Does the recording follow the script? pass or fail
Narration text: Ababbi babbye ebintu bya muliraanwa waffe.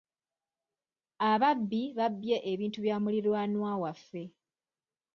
pass